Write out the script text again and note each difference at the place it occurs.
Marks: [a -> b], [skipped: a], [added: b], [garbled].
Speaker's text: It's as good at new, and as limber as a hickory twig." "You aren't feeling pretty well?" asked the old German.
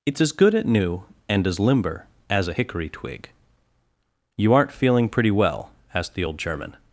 It's as good at new, and as limber as a hickory twig." "You aren't feeling pretty well?" asked the old German.